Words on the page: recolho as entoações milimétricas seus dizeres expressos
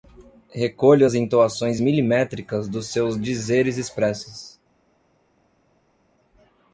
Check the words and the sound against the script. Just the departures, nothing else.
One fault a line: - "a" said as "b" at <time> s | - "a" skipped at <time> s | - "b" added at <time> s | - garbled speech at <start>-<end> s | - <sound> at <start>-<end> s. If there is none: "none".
- "dos" added at 2.7 s